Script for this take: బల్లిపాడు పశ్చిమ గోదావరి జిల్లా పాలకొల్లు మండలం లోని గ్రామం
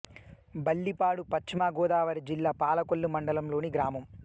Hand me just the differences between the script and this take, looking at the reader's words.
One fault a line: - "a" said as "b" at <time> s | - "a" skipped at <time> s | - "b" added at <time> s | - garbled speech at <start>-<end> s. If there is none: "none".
none